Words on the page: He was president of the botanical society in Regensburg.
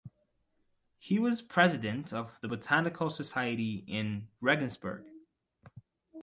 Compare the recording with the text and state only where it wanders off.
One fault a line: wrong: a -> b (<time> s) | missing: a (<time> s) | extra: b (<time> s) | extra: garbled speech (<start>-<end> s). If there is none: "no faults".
no faults